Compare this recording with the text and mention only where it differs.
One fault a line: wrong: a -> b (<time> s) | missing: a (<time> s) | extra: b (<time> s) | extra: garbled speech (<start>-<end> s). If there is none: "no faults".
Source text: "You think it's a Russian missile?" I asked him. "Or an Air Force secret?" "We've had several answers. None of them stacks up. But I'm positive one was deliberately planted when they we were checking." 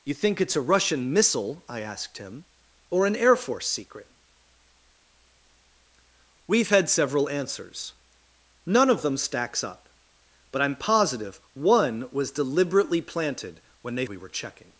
no faults